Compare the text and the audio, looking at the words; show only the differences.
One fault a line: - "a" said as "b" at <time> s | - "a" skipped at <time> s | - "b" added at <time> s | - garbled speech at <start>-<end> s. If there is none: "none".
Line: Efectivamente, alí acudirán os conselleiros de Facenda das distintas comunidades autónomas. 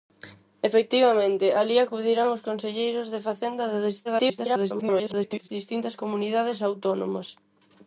- garbled speech at 4.0-5.5 s